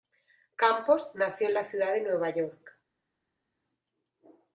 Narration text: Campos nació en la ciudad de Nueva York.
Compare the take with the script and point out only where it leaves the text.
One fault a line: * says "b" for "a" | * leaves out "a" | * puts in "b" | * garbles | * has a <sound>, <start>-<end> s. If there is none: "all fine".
all fine